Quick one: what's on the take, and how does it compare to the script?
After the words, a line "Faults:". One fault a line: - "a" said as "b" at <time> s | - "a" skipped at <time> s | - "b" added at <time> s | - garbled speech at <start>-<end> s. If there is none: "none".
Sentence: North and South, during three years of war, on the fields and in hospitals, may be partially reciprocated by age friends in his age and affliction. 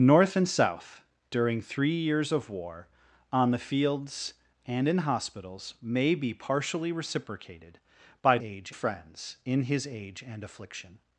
North and South, during three years of war, on the fields and in hospitals, may be partially reciprocated by age friends in his age and affliction.
Faults:
none